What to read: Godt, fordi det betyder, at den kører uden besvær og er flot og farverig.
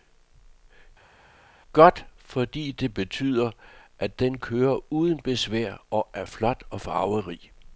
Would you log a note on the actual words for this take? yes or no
no